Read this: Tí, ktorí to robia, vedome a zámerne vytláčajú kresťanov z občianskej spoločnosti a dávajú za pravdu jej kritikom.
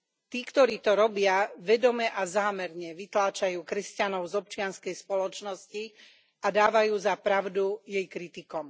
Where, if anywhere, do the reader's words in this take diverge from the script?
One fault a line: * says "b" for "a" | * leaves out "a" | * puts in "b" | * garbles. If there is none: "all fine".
all fine